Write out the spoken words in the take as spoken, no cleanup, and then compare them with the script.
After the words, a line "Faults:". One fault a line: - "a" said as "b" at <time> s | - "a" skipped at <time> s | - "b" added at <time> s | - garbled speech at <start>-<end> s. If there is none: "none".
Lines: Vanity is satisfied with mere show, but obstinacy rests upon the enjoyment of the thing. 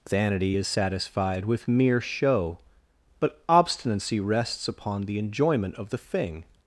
Vanity is satisfied with mere show, but obstinacy rests upon the enjoyment of the thing.
Faults:
none